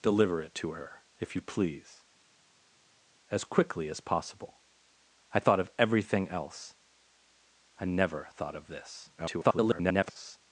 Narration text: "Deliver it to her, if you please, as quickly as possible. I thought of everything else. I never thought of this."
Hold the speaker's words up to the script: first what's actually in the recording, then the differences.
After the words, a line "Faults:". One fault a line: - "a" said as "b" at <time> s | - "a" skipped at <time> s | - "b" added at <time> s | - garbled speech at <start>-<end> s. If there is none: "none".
"Deliver it to her, if you please, as quickly as possible. I thought of everything else. I never thought of this." [garbled]
Faults:
- garbled speech at 9.2-10.4 s